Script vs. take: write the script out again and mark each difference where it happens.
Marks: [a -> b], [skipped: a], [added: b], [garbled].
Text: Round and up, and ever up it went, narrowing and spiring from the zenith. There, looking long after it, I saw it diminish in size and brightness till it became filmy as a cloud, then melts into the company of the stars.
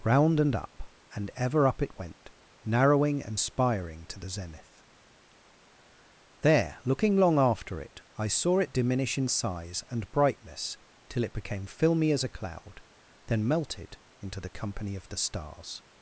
Round and up, and ever up it went, narrowing and spiring [from -> to] the zenith. There, looking long after it, I saw it diminish in size and brightness till it became filmy as a cloud, then [melts -> melted] into the company of the stars.